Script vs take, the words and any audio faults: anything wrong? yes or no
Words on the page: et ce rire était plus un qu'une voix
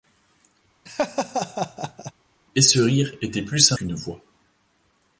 yes